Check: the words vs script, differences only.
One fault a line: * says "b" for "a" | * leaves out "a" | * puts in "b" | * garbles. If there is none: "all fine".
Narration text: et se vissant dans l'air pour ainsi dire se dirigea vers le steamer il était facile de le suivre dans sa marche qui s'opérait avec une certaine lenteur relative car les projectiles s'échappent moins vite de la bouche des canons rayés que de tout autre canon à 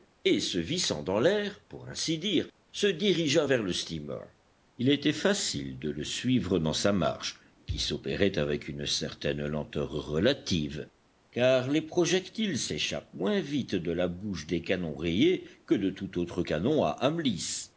all fine